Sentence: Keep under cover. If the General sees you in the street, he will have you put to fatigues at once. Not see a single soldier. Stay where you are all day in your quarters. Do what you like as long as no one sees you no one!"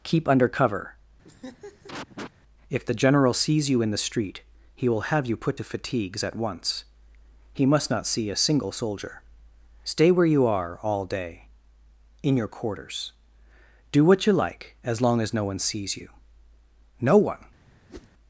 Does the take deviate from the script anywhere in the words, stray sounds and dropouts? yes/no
yes